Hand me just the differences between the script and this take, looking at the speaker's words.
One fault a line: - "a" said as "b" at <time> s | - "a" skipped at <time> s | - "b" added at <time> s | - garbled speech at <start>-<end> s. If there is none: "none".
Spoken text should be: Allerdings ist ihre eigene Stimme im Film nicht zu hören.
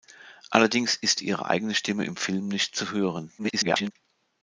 - garbled speech at 3.4-3.9 s